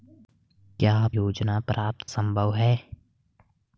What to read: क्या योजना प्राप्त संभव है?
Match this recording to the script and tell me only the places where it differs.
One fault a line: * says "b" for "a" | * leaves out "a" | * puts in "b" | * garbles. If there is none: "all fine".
all fine